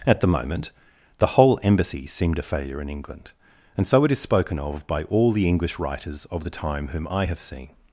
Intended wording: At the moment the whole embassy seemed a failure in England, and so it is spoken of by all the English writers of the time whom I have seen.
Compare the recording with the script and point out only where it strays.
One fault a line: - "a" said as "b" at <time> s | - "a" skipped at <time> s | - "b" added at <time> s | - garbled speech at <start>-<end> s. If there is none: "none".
none